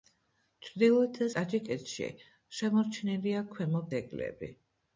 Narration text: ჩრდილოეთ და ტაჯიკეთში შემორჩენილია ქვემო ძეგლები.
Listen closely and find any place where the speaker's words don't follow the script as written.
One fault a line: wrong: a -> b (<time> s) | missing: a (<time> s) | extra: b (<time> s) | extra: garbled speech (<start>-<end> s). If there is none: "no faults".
no faults